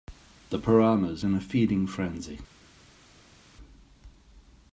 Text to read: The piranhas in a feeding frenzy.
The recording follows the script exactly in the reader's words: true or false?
true